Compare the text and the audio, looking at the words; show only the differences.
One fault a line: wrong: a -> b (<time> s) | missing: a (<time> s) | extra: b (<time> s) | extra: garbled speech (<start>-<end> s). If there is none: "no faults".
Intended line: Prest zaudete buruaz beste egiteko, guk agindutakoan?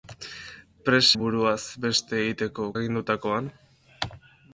missing: zaudete (1.2 s)
missing: guk (2.7 s)